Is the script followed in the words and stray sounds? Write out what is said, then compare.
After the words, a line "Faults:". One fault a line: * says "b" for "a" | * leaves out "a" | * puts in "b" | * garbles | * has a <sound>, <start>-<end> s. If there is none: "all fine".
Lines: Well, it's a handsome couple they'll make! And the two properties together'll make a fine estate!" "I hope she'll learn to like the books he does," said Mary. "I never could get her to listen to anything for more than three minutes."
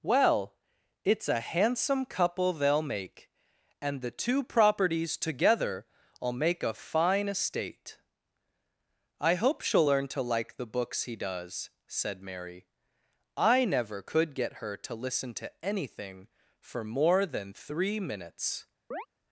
Well, it's a handsome couple they'll make! And the two properties together'll make a fine estate!" "I hope she'll learn to like the books he does," said Mary. "I never could get her to listen to anything for more than three minutes."
Faults:
* has a chirp, 18.9-19.1 s